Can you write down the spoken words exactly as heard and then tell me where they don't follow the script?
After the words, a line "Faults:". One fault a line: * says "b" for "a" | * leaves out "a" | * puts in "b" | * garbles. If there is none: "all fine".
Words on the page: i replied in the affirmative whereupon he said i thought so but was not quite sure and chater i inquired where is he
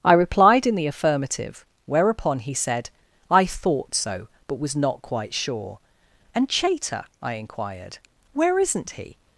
i replied in the affirmative whereupon he said i thought so but was not quite sure and chater i inquired where isn't he
Faults:
* says "isn't" for "is"